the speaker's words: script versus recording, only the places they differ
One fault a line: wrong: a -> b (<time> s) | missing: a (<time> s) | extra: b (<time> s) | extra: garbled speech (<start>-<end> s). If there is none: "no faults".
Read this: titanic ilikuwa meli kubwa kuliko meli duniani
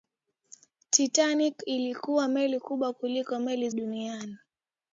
no faults